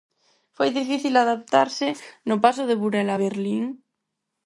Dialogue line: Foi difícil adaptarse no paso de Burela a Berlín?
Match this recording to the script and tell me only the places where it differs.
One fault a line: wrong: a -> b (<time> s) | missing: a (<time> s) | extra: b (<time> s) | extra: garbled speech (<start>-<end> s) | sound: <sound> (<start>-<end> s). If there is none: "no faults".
no faults